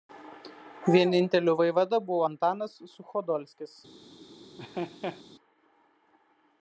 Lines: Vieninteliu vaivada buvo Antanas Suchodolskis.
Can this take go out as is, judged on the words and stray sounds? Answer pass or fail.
fail